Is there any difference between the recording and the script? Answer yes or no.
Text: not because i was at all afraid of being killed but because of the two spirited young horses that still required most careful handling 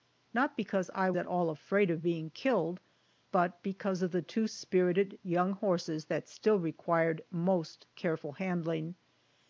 yes